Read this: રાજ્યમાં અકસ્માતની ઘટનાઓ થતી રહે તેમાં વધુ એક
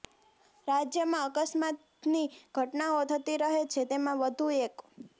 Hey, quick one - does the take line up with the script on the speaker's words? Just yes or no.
no